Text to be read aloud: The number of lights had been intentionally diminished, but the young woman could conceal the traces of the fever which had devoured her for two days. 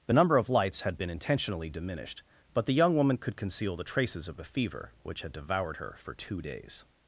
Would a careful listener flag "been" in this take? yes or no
no